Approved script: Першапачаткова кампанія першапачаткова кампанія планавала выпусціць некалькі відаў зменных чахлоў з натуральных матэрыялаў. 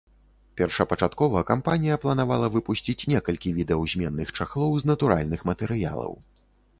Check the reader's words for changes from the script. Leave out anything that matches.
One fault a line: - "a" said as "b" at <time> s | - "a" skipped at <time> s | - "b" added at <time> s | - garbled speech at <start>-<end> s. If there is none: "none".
- "першапачаткова кампанія" skipped at 2.0 s